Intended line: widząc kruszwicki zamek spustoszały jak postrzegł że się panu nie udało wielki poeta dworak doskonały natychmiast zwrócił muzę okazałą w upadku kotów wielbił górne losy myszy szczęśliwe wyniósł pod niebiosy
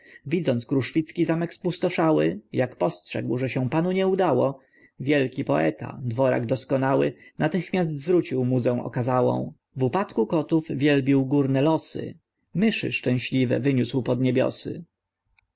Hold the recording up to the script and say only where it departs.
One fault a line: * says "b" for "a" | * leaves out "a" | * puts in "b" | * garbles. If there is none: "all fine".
all fine